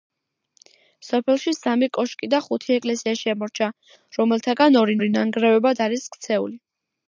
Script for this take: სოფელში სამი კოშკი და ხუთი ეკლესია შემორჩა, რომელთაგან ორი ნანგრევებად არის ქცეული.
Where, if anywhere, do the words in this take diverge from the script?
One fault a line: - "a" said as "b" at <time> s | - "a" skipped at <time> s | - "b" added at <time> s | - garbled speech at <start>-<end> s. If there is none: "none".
- "ორი" added at 5.0 s